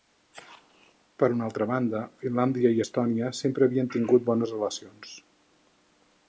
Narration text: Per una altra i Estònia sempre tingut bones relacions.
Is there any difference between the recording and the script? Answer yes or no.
yes